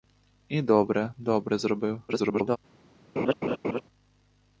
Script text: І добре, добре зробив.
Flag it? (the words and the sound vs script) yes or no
yes